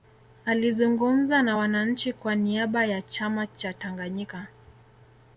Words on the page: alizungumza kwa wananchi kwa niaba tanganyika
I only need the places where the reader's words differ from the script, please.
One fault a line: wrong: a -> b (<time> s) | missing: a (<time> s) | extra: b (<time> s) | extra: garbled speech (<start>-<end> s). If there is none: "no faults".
wrong: kwa -> na (1.4 s)
extra: ya chama cha (2.8 s)